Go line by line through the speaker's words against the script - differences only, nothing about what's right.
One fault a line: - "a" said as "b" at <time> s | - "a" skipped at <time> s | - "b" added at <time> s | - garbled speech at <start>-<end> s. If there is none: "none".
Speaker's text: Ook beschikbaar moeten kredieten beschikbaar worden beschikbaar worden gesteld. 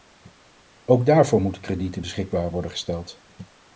- "beschikbaar" said as "daarvoor" at 1.1 s
- "beschikbaar worden" skipped at 2.7 s